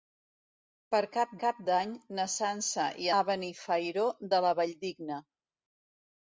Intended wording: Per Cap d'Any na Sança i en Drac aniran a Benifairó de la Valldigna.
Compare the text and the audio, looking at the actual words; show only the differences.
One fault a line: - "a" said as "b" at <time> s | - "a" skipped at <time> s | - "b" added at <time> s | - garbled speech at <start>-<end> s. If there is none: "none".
- "Cap" added at 1.4 s
- "en Drac aniran" skipped at 3.1 s